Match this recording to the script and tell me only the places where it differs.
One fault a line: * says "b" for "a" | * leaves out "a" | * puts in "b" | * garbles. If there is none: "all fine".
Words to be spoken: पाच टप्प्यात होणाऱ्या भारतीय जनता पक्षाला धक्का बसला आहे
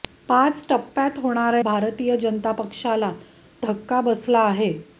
all fine